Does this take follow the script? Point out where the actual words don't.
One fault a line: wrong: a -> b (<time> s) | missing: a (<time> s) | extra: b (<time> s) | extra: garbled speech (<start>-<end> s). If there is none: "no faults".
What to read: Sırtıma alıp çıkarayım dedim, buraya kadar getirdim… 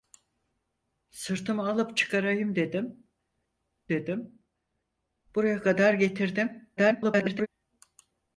extra: dedim (3.9 s)
extra: garbled speech (6.8-7.5 s)